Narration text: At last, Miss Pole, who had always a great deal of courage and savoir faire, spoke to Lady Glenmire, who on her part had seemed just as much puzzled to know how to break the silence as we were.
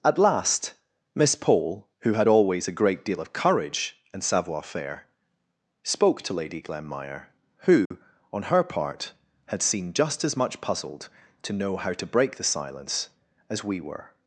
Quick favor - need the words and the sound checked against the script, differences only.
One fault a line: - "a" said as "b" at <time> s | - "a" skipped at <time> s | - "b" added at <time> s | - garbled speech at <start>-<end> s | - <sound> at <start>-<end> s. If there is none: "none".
- dropout at 7.9-7.9 s